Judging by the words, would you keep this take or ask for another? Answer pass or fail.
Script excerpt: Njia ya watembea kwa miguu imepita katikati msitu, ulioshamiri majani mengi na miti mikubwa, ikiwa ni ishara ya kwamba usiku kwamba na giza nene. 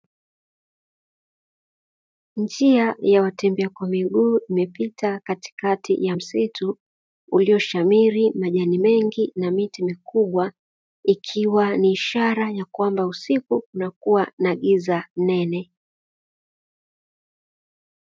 fail